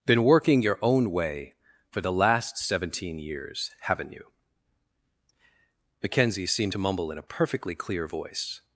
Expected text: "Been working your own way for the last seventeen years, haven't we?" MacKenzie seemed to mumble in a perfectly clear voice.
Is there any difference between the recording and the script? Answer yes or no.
yes